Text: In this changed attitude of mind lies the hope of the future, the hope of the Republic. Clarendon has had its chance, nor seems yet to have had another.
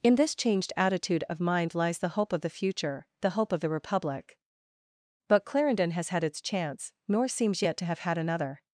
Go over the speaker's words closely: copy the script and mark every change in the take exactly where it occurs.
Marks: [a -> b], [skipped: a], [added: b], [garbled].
In this changed attitude of mind lies the hope of the future, the hope of the Republic. [added: But] Clarendon has had its chance, nor seems yet to have had another.